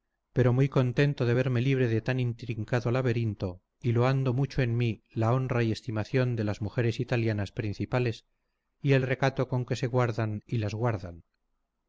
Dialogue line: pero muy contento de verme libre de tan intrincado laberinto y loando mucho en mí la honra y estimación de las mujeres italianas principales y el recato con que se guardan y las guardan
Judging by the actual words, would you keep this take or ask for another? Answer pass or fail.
pass